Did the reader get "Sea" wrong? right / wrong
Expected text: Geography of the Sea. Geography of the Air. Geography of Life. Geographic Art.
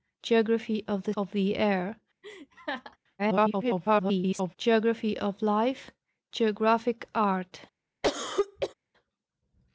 wrong